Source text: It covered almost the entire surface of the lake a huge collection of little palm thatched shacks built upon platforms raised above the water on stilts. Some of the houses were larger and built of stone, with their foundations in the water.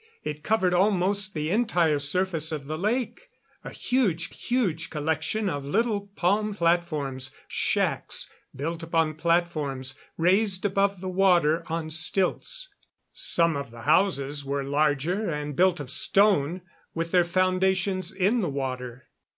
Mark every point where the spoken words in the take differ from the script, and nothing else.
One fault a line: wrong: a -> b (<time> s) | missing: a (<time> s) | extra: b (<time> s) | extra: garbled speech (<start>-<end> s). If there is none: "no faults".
extra: huge (4.3 s)
wrong: thatched -> platforms (6.5 s)